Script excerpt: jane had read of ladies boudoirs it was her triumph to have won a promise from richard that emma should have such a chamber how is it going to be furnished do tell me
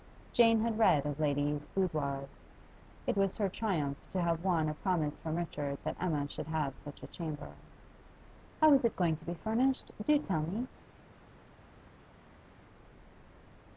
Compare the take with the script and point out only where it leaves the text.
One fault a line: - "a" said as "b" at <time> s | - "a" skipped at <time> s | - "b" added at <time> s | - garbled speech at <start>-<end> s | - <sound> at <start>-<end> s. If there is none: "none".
none